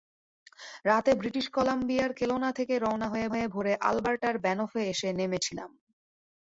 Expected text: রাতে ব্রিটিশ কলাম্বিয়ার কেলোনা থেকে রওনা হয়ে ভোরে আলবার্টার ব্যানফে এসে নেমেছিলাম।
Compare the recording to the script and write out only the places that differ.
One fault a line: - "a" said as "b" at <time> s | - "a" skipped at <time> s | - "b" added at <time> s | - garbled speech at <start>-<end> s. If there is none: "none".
- "হয়ে" added at 3.3 s